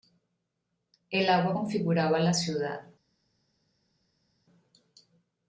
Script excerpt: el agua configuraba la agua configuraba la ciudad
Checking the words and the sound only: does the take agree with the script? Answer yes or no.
no